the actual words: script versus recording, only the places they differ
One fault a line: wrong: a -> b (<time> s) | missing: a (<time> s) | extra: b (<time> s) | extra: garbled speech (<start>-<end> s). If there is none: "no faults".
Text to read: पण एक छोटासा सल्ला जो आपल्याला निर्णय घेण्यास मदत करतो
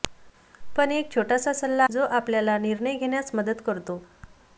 no faults